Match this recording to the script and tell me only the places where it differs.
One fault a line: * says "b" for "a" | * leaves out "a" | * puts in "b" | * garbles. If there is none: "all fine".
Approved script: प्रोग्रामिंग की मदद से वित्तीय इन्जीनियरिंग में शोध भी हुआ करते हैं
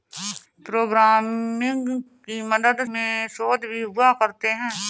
* leaves out "से वित्तीय इन्जीनियरिंग"